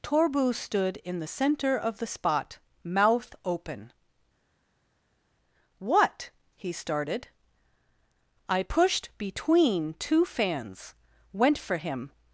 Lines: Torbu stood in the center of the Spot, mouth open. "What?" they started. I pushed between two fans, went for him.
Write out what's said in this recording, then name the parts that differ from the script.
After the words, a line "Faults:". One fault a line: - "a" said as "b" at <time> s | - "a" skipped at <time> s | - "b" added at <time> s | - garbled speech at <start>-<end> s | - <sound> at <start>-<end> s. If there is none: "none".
Torbu stood in the center of the Spot, mouth open. "What?" he started. I pushed between two fans, went for him.
Faults:
- "they" said as "he" at 6.5 s